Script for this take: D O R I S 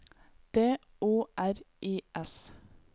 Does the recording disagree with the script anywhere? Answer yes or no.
no